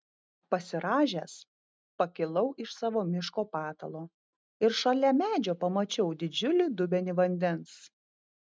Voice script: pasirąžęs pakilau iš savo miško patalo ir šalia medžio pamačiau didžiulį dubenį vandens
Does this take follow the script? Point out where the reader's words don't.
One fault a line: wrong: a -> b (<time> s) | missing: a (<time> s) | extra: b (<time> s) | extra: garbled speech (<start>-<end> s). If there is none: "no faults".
no faults